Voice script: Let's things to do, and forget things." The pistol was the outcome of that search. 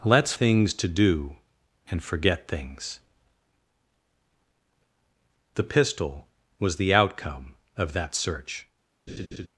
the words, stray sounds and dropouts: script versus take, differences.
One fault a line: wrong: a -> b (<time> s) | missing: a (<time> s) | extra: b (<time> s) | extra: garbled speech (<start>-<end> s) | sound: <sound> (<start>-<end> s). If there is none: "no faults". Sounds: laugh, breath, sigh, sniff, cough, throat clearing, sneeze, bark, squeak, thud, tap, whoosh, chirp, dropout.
sound: laugh (9.1-9.5 s)